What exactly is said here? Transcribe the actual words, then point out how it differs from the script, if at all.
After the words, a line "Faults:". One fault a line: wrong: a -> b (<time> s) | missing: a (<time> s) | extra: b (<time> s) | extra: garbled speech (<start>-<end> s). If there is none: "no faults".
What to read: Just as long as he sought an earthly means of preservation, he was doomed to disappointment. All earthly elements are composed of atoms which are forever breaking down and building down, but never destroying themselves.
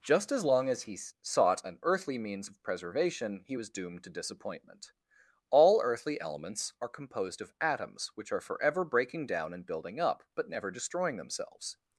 Just as long as he sought an earthly means of preservation, he was doomed to disappointment. All earthly elements are composed of atoms which are forever breaking down and building up, but never destroying themselves.
Faults:
wrong: down -> up (10.0 s)